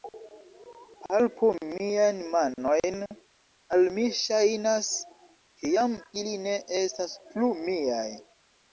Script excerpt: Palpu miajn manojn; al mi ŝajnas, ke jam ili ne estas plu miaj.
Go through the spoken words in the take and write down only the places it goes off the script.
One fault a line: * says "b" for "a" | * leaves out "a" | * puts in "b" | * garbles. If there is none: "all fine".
all fine